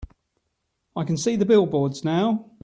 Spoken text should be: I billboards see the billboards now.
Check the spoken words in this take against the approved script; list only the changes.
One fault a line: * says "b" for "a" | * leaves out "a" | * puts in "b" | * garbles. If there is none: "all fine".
* says "can" for "billboards"